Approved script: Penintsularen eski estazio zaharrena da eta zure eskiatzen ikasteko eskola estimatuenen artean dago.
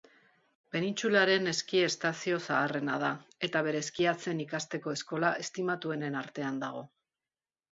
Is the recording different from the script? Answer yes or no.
yes